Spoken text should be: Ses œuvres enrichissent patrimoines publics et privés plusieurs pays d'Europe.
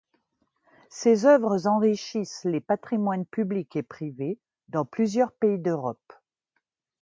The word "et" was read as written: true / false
true